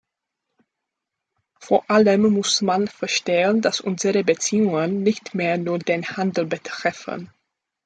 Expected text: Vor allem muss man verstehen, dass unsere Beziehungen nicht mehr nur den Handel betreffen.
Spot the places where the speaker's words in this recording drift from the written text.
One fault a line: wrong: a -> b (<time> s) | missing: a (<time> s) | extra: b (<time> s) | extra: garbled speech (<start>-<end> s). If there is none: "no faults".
no faults